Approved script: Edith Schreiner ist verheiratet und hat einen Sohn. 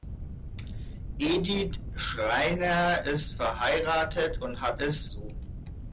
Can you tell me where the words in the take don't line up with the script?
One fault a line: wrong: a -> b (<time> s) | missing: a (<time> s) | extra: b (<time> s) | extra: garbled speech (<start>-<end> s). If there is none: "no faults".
wrong: einen -> ist (4.8 s)